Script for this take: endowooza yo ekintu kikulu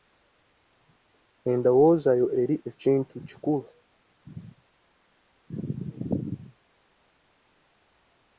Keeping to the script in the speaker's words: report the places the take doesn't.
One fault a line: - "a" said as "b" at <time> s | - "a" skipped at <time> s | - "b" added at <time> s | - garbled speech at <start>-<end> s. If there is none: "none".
- "eri" added at 2.4 s